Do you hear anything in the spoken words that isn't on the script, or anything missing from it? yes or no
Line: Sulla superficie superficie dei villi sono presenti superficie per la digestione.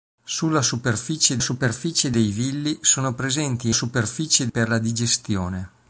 no